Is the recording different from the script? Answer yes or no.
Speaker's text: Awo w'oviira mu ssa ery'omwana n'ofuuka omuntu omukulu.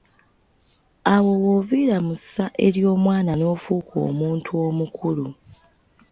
no